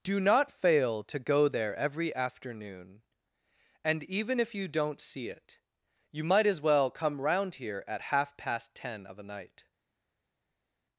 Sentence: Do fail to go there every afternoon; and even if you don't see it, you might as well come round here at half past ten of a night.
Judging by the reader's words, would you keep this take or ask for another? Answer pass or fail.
fail